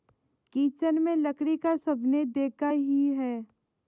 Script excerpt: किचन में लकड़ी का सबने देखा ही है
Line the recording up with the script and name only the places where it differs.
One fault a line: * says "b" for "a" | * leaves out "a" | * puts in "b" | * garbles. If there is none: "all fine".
all fine